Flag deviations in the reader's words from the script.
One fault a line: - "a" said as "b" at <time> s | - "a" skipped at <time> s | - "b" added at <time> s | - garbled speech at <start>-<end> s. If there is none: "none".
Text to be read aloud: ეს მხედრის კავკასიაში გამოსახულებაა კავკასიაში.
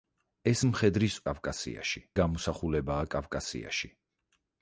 none